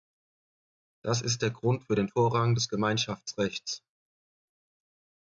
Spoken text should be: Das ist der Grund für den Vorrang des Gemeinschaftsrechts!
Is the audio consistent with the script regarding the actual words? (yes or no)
yes